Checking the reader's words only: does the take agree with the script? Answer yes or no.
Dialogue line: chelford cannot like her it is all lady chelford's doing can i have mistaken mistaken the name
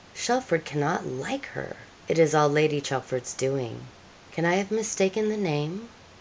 no